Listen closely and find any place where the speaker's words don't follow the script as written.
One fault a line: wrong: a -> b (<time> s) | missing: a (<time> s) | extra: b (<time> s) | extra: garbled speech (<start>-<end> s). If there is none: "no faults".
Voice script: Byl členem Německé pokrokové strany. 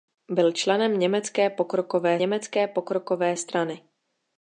extra: Německé pokrokové (2.2 s)